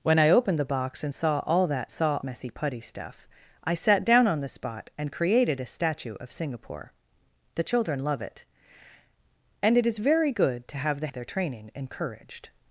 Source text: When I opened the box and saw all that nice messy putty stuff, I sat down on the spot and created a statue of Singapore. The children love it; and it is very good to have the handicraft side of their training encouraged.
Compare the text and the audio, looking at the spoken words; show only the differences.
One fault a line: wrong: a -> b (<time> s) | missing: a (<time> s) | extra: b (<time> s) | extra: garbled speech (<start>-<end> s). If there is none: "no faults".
wrong: nice -> saw (1.9 s)
missing: handicraft side (11.1 s)